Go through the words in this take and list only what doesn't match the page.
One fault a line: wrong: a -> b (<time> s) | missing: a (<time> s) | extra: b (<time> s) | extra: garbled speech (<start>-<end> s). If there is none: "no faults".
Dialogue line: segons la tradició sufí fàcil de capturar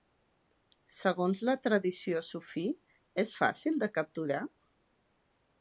extra: és (3.2 s)